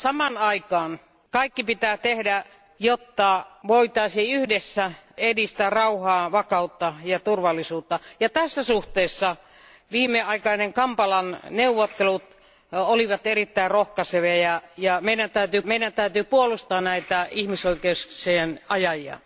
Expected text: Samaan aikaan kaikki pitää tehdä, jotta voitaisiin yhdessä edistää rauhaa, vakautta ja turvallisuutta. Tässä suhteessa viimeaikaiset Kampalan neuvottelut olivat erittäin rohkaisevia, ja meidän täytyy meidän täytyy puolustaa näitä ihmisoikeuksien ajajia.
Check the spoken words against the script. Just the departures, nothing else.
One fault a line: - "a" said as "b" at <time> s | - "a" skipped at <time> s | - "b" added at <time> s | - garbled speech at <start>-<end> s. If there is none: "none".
none